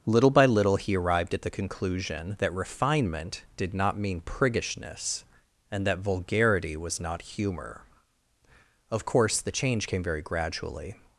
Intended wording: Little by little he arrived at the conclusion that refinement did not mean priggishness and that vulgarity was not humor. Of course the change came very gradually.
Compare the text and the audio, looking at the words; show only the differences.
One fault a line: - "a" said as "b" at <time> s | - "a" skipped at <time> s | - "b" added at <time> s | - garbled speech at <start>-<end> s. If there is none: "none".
none